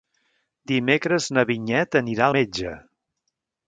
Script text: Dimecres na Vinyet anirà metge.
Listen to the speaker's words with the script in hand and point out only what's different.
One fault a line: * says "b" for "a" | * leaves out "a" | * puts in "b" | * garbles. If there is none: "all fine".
all fine